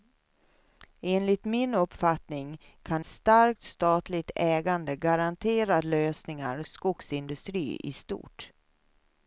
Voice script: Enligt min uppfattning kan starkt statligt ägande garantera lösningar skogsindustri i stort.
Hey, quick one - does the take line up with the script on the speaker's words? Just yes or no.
yes